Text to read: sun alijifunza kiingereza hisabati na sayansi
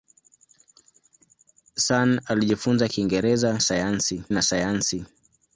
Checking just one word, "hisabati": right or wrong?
wrong